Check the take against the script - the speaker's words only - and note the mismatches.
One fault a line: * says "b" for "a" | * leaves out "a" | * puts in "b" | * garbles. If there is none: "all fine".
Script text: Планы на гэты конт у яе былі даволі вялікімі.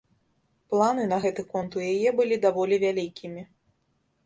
all fine